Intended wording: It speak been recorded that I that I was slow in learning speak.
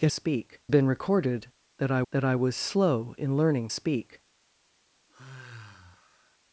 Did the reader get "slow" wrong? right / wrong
right